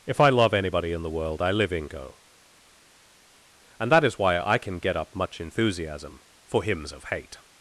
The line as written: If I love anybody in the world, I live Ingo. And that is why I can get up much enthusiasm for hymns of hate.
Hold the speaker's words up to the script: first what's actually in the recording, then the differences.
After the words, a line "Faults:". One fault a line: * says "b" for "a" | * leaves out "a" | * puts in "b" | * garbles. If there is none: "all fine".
If I love anybody in the world, I live Ingo. And that is why I can get up much enthusiasm for hymns of hate.
Faults:
all fine